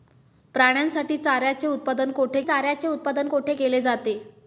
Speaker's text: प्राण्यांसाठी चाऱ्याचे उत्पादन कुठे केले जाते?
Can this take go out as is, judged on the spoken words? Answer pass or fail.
fail